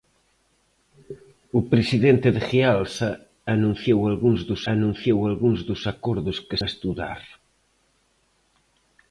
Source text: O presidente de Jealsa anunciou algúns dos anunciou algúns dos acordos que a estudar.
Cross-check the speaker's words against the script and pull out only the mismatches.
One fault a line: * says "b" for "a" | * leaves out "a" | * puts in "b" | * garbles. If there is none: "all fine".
all fine